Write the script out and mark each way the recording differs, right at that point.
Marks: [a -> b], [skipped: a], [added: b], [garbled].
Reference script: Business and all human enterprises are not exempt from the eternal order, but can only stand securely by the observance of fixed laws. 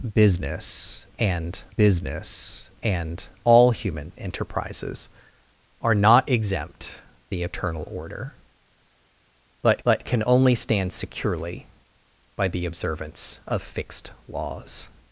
Business and [added: business and] all human enterprises are not exempt [skipped: from] the eternal order, but [added: but] can only stand securely by the observance of fixed laws.